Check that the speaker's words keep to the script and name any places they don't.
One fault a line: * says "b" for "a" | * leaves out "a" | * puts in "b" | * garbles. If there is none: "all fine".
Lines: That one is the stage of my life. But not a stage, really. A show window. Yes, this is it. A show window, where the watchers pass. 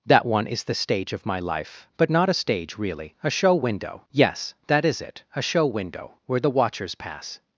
* says "that" for "this"